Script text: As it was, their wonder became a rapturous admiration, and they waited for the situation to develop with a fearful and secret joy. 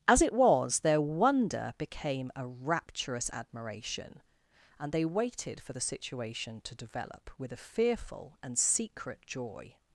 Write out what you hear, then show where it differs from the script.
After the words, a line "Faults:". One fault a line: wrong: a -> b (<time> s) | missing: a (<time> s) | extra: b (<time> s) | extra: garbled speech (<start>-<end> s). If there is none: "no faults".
As it was, their wonder became a rapturous admiration, and they waited for the situation to develop with a fearful and secret joy.
Faults:
no faults